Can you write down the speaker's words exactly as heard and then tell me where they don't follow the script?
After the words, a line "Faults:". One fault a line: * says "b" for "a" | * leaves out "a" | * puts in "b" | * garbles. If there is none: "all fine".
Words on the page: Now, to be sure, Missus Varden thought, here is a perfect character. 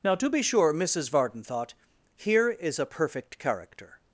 Now, to be sure, Missus Varden thought, here is a perfect character.
Faults:
all fine